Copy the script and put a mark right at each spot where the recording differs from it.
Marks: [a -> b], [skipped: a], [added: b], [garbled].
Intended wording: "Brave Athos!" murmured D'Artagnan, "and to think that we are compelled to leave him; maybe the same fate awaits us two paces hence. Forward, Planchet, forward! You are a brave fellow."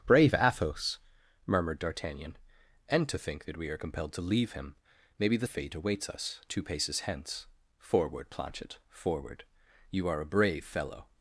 "Brave Athos!" murmured D'Artagnan, "and to think that we are compelled to leave him; maybe the [skipped: same] fate awaits us two paces hence. Forward, Planchet, forward! You are a brave fellow."